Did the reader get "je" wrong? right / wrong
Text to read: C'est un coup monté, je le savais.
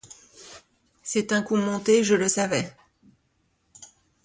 right